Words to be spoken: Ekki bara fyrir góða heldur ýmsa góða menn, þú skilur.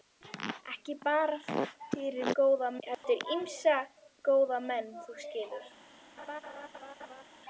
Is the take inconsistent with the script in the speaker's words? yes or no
no